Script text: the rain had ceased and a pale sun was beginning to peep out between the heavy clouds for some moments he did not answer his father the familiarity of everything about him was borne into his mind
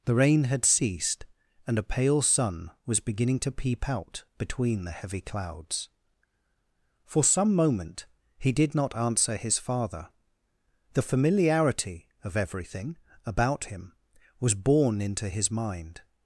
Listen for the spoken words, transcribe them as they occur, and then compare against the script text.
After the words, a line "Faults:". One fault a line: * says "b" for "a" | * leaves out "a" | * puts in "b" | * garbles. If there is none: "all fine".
the rain had ceased and a pale sun was beginning to peep out between the heavy clouds for some moment he did not answer his father the familiarity of everything about him was borne into his mind
Faults:
* says "moment" for "moments"